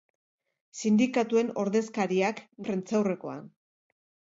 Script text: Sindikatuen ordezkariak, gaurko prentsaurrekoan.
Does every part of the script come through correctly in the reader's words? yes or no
no